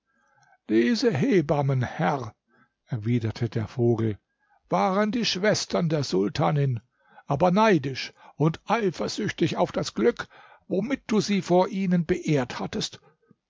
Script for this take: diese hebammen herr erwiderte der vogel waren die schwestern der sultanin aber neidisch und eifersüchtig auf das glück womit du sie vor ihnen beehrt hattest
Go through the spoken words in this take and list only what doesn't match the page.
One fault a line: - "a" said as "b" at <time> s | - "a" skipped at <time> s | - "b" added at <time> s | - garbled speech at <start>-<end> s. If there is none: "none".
none